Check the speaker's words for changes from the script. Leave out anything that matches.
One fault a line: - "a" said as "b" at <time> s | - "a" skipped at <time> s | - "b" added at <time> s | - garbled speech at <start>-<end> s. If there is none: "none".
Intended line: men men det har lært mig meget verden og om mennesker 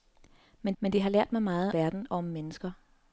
none